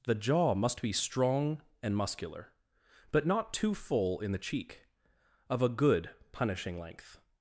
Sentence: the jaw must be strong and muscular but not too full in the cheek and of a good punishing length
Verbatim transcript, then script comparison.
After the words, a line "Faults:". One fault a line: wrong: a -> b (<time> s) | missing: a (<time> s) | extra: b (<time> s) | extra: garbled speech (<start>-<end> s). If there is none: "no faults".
the jaw must be strong and muscular but not too full in the cheek of a good punishing length
Faults:
missing: and (4.9 s)